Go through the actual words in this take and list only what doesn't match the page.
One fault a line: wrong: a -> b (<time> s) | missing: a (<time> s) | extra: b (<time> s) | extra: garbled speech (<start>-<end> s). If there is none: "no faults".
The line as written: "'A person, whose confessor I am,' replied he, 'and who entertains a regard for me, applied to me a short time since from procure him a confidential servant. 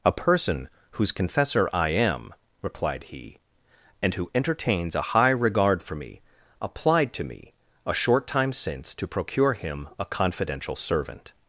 extra: high (5.1 s)
wrong: from -> to (8.9 s)